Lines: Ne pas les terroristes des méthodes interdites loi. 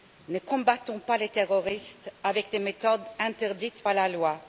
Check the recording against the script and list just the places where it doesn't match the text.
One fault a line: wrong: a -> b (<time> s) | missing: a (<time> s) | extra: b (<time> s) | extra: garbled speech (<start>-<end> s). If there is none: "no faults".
extra: combattons (0.4 s)
extra: avec (2.2 s)
extra: par la (3.8 s)